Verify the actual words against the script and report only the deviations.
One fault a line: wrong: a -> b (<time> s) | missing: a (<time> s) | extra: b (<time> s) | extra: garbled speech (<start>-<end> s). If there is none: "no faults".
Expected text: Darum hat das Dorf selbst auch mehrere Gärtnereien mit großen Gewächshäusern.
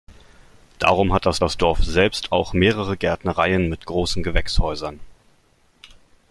extra: das (1.4 s)